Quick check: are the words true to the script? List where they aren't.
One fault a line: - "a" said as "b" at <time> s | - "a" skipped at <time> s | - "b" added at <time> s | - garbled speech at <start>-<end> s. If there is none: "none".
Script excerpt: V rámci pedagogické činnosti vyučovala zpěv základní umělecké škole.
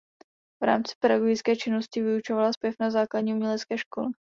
- "na" added at 2.8 s